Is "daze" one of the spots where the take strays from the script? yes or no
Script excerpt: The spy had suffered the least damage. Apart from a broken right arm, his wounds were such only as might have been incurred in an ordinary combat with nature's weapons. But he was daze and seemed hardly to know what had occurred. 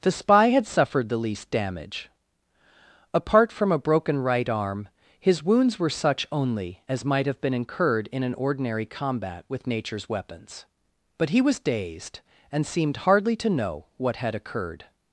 yes